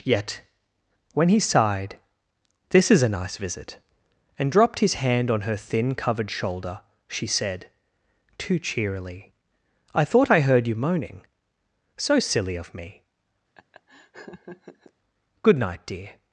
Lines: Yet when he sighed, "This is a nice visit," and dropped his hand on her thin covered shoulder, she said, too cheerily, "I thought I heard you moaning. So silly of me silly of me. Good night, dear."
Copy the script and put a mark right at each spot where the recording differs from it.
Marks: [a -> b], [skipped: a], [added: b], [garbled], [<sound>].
Yet when he sighed, "This is a nice visit," and dropped his hand on her thin covered shoulder, she said, too cheerily, "I thought I heard you moaning. So silly of me [skipped: silly of me.] [laugh] Good night, dear."